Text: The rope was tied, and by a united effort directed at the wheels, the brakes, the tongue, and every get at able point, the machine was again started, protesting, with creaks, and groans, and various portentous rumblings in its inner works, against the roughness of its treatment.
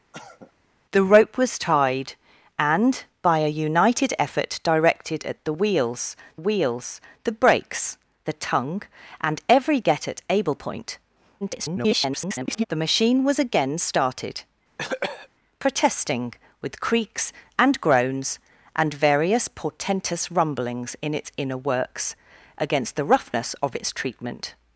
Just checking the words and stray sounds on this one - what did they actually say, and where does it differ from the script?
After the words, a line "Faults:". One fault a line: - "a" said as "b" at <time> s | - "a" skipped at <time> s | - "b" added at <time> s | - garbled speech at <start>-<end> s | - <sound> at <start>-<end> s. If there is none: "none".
The rope was tied, and by a united effort directed at the wheels wheels, the brakes, the tongue, and every get at able point, [garbled] the machine was again started, protesting, with creaks, and groans, and various portentous rumblings in its inner works, against the roughness of its treatment.
Faults:
- cough at 0.1-0.5 s
- "wheels" added at 6.3 s
- garbled speech at 11.4-12.6 s
- cough at 14.8-15.3 s